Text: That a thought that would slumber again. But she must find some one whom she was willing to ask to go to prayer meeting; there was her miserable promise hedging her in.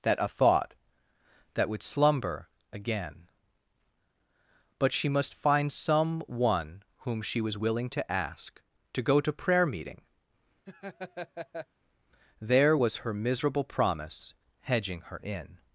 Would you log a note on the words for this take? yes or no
no